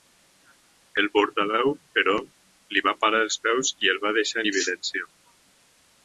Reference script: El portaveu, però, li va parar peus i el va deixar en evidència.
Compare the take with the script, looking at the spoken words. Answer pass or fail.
fail